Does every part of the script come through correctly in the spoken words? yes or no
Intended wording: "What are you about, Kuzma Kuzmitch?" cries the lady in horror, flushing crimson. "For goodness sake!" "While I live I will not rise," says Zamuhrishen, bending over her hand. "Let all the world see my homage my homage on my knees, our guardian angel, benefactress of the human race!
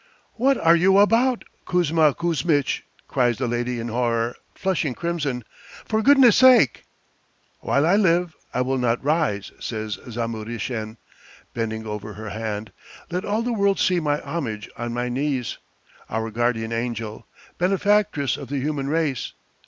no